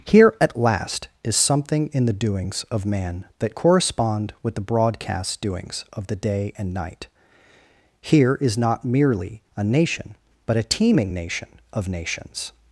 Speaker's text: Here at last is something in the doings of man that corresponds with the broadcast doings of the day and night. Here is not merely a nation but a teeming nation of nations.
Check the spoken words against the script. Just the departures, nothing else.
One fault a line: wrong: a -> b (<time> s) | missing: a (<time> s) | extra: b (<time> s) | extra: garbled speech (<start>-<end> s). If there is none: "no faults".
wrong: corresponds -> correspond (3.5 s)